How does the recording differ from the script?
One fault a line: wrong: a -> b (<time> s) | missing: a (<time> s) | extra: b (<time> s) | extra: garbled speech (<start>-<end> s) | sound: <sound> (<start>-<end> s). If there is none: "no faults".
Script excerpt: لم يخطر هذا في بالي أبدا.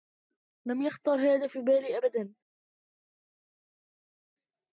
no faults